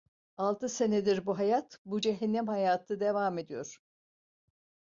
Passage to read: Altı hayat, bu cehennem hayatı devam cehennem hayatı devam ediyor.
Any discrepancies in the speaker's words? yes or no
yes